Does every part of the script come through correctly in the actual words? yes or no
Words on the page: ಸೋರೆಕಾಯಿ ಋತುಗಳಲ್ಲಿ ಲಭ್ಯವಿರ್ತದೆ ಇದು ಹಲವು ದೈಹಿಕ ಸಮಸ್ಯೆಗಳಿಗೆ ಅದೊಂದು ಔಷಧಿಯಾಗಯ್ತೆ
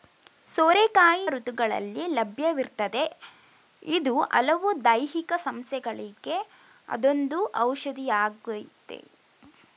yes